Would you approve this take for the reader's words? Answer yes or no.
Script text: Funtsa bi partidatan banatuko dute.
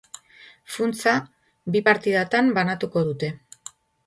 yes